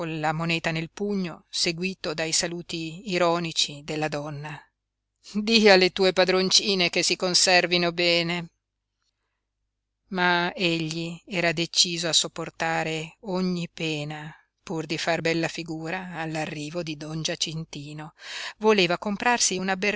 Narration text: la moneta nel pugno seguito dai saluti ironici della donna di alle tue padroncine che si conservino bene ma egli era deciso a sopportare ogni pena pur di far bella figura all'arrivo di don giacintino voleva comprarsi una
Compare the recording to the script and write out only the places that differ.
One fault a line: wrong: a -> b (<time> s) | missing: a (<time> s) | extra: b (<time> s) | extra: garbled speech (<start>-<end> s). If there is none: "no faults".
no faults